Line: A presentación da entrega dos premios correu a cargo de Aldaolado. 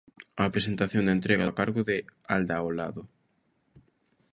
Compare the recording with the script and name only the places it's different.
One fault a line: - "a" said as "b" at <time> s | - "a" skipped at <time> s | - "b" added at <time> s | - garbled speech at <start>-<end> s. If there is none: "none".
- "dos premios correu" skipped at 1.5 s